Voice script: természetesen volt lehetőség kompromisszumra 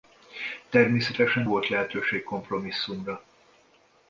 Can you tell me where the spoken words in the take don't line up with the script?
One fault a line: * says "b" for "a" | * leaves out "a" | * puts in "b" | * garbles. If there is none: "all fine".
all fine